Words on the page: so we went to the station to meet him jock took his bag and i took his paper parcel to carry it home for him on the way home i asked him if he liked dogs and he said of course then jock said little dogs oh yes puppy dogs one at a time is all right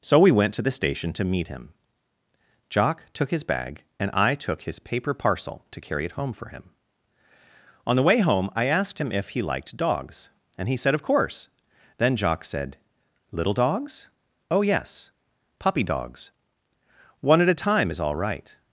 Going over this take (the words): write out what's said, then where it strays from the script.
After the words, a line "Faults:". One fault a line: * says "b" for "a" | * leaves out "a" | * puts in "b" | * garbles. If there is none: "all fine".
so we went to the station to meet him jock took his bag and i took his paper parcel to carry it home for him on the way home i asked him if he liked dogs and he said of course then jock said little dogs oh yes puppy dogs one at a time is all right
Faults:
all fine